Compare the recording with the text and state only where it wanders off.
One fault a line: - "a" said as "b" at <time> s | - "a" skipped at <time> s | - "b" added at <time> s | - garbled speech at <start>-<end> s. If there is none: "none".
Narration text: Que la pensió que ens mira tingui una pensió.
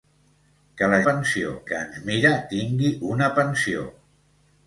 none